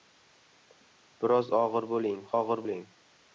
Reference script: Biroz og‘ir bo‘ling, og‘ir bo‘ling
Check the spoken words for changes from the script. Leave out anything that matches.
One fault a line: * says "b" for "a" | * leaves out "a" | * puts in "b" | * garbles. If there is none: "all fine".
all fine